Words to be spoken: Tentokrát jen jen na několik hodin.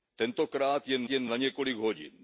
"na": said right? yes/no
yes